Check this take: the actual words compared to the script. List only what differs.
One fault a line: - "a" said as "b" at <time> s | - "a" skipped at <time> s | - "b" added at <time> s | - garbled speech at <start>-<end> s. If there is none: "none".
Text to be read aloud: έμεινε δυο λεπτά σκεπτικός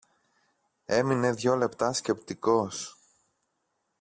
none